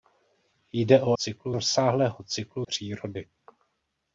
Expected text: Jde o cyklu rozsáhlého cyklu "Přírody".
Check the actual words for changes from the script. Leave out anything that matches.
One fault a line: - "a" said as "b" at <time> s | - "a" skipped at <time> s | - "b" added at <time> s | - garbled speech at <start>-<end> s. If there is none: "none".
none